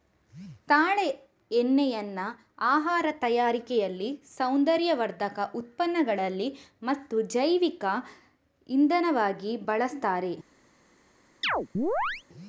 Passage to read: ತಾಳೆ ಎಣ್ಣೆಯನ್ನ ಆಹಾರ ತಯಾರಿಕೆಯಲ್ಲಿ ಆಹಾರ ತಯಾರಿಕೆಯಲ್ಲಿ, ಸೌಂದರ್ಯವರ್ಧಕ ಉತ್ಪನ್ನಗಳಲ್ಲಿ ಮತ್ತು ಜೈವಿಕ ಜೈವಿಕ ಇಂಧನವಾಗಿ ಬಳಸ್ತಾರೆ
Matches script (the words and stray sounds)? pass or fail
fail